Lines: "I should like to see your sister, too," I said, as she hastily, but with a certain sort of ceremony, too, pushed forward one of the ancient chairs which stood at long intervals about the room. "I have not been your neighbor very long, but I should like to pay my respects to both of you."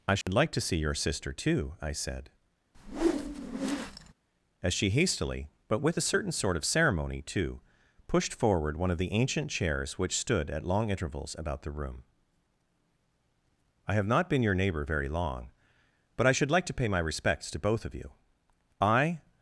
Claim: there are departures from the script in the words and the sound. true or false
true